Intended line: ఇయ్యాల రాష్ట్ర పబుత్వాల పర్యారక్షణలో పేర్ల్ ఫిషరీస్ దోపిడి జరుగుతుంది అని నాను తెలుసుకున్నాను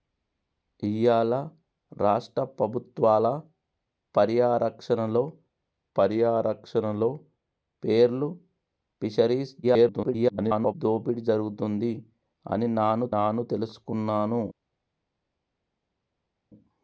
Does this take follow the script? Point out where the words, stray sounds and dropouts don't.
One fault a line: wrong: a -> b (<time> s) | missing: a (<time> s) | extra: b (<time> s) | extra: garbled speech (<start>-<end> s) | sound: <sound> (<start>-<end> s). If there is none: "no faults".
extra: పర్యారక్షణలో (6.0 s)
extra: garbled speech (9.6-10.7 s)
extra: నాను (13.2 s)